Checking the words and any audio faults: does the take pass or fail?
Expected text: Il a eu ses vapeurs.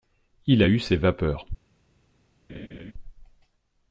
fail